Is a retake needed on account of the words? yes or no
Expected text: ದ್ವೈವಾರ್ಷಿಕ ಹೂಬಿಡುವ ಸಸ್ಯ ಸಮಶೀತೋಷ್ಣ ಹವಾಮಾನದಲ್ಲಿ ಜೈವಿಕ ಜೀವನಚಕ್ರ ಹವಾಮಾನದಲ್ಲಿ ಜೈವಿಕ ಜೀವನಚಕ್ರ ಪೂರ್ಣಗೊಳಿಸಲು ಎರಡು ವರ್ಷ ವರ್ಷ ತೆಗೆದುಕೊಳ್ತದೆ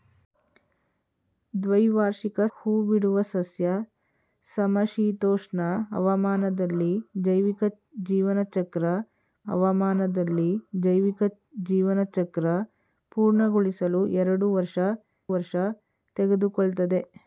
no